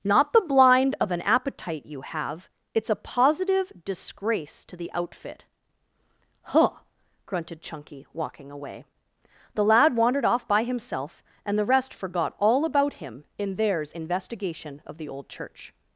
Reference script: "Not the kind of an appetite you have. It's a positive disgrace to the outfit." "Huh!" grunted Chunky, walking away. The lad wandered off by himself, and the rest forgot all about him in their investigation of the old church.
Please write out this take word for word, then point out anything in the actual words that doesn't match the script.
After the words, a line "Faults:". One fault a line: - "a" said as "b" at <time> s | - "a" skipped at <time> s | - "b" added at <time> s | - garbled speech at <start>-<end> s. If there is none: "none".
"Not the blind of an appetite you have. It's a positive disgrace to the outfit." "Huh!" grunted Chunky, walking away. The lad wandered off by himself, and the rest forgot all about him in theirs investigation of the old church.
Faults:
- "kind" said as "blind" at 0.4 s
- "their" said as "theirs" at 13.6 s